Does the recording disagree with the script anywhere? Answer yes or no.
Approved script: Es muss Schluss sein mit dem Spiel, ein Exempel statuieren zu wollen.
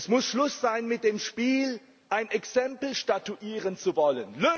no